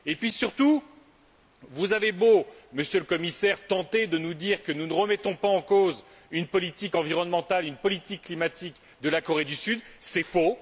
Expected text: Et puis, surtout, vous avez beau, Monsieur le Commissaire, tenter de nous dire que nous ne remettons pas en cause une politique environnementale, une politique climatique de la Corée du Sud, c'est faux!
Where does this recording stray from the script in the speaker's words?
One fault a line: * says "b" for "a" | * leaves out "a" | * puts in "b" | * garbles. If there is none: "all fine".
all fine